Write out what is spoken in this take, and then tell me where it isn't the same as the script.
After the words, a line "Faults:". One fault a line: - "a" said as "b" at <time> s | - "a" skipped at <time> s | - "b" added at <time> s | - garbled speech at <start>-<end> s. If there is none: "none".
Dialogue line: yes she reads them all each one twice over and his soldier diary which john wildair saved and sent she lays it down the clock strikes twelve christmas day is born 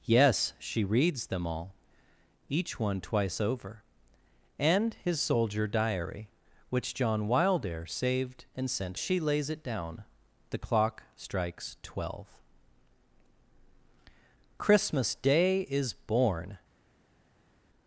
yes she reads them all each one twice over and his soldier diary which john wildair saved and sent she lays it down the clock strikes twelve christmas day is born
Faults:
none